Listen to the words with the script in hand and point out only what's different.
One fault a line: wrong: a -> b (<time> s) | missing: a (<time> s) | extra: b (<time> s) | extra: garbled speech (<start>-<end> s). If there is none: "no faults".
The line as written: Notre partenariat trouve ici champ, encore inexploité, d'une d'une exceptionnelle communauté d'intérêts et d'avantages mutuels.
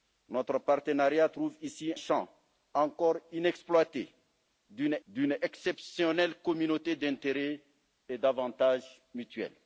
no faults